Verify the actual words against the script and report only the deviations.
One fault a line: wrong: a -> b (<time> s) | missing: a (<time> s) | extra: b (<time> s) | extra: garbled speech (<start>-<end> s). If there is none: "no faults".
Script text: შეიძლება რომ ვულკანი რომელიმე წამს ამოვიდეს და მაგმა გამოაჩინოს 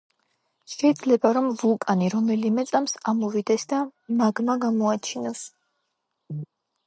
no faults